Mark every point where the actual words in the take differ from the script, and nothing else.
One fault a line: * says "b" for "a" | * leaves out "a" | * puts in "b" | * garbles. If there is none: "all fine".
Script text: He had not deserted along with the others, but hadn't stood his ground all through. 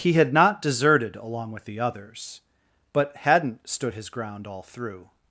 all fine